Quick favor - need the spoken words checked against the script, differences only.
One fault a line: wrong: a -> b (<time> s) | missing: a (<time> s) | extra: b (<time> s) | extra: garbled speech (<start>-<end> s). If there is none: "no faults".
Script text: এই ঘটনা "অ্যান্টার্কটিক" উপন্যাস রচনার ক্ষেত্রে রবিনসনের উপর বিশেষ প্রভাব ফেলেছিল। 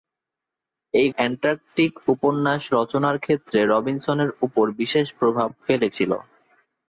missing: ঘটনা (1.1 s)